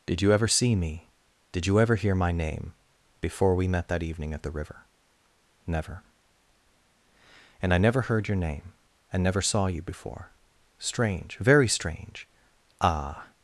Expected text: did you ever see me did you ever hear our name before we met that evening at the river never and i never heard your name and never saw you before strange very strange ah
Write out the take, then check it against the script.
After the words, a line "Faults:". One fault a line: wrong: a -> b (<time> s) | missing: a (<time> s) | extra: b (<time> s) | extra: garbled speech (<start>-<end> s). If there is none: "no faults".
did you ever see me did you ever hear my name before we met that evening at the river never and i never heard your name and never saw you before strange very strange ah
Faults:
wrong: our -> my (2.2 s)